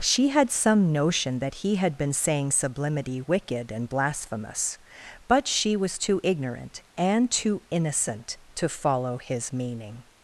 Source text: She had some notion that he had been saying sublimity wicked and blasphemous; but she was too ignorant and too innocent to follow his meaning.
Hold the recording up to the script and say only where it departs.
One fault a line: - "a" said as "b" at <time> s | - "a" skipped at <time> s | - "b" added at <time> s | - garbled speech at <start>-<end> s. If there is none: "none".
none